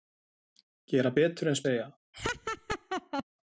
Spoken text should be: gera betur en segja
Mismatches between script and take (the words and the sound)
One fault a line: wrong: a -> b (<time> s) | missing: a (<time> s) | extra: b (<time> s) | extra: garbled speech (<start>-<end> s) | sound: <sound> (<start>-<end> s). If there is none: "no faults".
sound: laugh (2.1-3.2 s)